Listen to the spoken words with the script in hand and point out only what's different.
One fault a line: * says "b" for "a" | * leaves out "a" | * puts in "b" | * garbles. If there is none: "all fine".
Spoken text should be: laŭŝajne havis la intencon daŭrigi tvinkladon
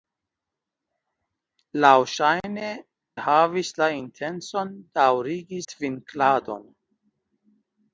all fine